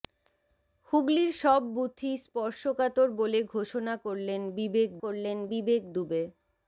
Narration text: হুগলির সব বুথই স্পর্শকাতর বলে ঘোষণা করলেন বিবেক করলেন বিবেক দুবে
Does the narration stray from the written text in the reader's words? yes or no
no